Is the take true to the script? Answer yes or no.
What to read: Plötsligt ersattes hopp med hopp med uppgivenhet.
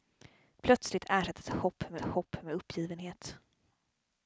yes